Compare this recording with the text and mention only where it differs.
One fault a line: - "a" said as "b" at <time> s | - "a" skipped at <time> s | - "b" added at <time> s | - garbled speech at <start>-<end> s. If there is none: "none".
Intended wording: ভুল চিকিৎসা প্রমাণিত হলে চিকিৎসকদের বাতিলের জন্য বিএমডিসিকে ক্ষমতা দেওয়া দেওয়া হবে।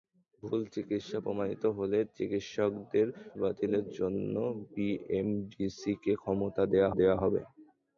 none